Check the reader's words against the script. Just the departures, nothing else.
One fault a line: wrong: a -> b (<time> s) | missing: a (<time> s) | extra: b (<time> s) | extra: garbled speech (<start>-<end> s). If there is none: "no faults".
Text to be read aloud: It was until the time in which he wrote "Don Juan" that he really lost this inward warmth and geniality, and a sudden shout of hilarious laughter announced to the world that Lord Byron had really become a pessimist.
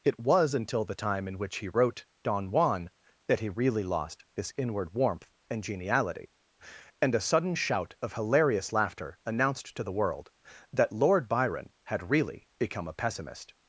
no faults